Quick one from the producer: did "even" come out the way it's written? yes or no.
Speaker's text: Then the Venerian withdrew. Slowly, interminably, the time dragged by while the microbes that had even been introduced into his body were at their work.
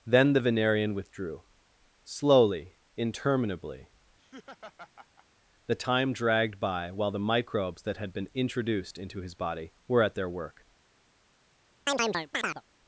no